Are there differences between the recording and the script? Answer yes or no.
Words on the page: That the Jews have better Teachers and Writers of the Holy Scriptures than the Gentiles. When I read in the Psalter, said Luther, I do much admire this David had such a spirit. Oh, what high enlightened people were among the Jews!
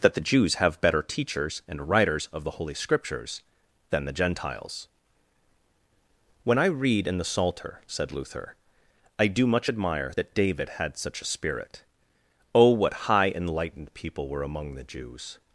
yes